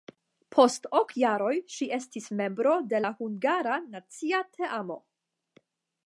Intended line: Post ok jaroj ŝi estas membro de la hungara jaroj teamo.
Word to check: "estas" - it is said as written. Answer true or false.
false